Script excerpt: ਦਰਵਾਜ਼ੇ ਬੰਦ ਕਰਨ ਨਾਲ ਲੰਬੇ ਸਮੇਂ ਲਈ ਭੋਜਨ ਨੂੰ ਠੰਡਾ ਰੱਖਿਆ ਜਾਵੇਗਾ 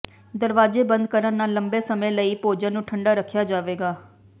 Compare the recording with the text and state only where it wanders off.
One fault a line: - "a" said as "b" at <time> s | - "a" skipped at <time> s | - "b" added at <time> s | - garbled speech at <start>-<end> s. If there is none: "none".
none